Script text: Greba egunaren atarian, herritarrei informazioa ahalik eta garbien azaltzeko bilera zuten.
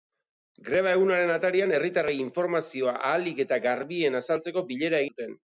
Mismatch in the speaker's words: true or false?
false